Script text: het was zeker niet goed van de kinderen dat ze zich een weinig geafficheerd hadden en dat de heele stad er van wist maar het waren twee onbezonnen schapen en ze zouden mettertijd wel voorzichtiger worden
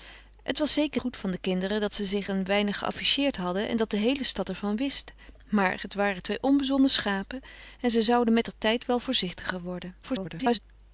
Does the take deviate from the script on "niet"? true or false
true